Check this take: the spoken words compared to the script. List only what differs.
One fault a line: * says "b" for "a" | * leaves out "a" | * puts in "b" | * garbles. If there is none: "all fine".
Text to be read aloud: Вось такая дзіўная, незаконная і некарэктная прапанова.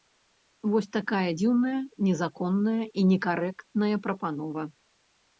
all fine